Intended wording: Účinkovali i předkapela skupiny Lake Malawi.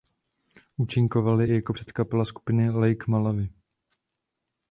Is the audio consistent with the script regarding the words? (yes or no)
no